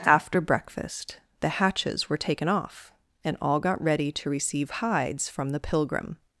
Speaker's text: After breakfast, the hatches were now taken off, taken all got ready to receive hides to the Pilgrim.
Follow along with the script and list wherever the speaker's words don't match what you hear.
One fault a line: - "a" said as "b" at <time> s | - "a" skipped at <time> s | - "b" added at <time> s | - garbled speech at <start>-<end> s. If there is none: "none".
- "now" skipped at 2.2 s
- "taken" said as "and" at 3.2 s
- "to" said as "from" at 5.3 s